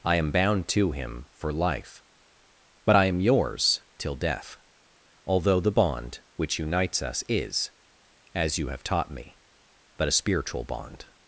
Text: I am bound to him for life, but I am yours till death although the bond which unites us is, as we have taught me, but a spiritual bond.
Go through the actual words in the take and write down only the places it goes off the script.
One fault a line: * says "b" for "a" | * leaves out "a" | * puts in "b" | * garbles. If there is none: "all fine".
* says "you" for "we"